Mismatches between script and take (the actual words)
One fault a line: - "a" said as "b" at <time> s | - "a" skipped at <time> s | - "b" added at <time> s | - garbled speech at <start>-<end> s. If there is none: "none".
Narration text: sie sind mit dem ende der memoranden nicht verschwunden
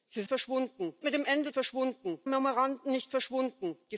- "sind" said as "verschwunden" at 0.3 s
- "der" said as "verschwunden" at 1.5 s